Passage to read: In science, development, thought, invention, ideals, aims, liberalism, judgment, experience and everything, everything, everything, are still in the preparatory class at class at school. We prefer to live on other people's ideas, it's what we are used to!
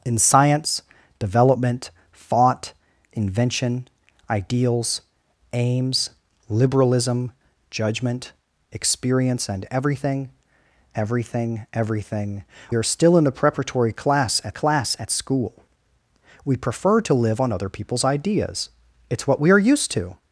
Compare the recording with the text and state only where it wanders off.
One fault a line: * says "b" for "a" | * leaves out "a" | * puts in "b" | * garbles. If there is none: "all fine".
all fine